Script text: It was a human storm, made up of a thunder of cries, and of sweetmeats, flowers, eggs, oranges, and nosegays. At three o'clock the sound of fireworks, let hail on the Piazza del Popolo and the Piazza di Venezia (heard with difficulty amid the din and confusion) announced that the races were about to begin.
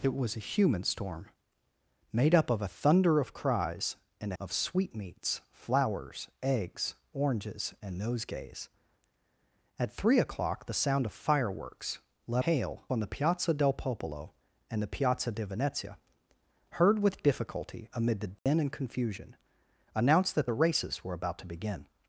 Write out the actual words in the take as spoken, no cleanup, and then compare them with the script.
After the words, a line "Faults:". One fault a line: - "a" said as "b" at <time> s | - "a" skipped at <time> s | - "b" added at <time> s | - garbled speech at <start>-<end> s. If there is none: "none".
It was a human storm, made up of a thunder of cries, and of sweetmeats, flowers, eggs, oranges, and nosegays. At three o'clock the sound of fireworks, let hail on the Piazza del Popolo and the Piazza di Venezia (heard with difficulty amid the din and confusion) announced that the races were about to begin.
Faults:
none